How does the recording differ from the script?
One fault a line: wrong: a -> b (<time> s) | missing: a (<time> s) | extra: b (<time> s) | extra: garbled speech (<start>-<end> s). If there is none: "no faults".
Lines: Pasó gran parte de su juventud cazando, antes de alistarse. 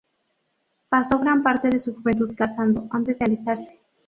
no faults